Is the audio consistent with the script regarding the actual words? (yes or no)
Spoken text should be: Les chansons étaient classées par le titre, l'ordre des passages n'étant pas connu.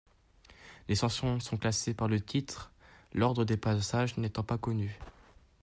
no